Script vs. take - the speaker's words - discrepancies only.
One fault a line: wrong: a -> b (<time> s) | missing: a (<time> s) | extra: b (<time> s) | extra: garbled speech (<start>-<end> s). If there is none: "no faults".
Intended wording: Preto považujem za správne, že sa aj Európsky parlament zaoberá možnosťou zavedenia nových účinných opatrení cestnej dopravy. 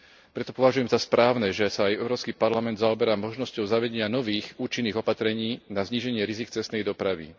extra: na zníženie rizík (5.7 s)